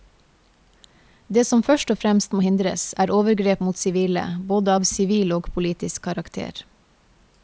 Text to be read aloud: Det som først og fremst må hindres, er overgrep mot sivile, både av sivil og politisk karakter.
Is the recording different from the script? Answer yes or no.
no